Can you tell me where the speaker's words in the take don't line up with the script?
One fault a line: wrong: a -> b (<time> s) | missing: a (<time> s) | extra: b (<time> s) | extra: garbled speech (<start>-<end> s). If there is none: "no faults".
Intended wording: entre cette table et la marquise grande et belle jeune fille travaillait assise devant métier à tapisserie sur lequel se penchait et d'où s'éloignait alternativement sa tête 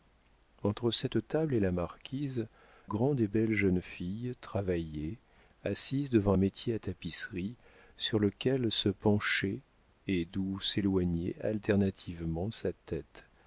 no faults